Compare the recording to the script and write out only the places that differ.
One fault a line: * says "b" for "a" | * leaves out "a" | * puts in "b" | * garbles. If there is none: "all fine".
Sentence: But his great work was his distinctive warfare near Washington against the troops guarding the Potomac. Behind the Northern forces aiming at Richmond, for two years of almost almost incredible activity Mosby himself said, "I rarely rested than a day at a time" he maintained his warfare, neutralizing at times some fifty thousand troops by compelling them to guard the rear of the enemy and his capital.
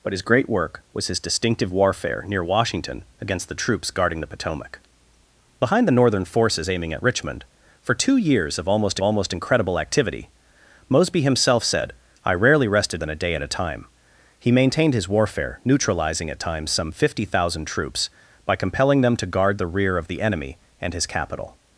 all fine